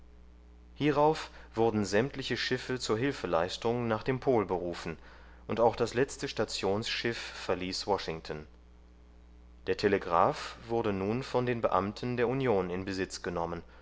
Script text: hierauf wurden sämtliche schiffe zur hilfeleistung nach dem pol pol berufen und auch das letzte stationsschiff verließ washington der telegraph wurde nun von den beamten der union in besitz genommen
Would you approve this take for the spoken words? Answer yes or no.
no